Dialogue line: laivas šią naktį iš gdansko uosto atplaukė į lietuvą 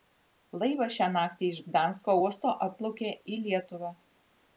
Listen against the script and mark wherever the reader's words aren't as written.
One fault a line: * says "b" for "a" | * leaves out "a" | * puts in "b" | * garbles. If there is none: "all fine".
all fine